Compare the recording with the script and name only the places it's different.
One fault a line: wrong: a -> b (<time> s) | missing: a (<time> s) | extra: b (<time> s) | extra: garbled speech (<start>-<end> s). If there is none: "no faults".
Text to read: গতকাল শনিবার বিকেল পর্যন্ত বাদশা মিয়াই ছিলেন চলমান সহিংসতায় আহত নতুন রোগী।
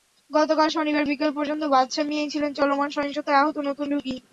no faults